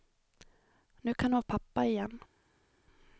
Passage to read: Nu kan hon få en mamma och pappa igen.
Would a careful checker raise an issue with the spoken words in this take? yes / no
yes